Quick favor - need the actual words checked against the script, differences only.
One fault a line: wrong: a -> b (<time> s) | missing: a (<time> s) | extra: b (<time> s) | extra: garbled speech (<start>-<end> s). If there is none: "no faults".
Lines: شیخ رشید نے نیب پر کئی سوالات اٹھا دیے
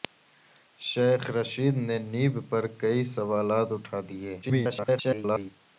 extra: garbled speech (4.4-5.5 s)